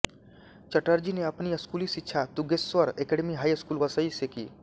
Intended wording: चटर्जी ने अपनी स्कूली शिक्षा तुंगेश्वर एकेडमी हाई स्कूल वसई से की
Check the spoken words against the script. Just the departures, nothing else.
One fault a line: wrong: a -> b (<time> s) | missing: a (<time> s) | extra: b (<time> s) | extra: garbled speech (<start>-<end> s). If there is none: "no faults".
no faults